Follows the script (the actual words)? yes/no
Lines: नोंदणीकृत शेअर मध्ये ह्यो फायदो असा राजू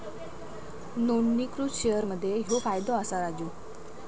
yes